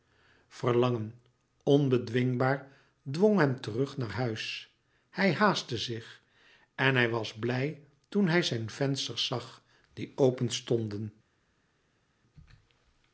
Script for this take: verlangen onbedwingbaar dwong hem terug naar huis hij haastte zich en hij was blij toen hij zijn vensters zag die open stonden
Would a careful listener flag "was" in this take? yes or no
no